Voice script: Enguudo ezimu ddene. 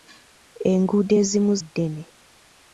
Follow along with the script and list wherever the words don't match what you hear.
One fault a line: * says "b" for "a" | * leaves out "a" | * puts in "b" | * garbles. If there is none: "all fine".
all fine